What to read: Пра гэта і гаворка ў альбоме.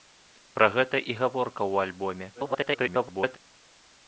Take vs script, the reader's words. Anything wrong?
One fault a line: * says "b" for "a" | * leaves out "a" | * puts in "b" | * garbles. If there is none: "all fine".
* garbles